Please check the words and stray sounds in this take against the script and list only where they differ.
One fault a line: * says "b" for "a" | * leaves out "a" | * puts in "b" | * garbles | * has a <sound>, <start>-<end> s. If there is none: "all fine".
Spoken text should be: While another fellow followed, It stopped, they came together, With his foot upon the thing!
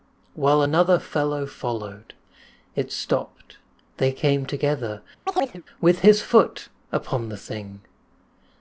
* has a chirp, 5.3-5.6 s